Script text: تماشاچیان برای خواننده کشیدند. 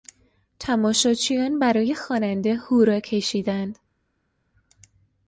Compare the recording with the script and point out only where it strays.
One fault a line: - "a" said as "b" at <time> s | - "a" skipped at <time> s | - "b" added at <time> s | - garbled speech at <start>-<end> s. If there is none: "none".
- "هورا" added at 2.5 s